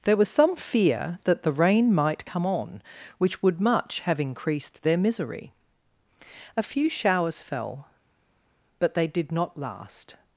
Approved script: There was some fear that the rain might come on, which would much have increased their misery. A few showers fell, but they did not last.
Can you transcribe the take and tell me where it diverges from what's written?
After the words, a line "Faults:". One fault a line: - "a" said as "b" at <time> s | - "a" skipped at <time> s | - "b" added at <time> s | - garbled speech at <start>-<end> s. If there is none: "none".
There was some fear that the rain might come on, which would much have increased their misery. A few showers fell, but they did not last.
Faults:
none